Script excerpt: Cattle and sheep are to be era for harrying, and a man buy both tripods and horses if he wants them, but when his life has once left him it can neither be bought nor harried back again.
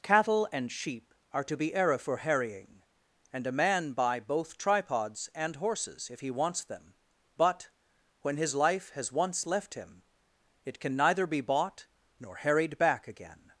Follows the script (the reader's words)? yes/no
yes